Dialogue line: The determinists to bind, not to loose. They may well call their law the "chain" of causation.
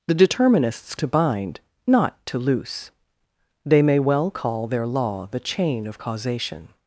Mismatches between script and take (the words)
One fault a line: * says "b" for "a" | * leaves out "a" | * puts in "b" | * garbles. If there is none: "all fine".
all fine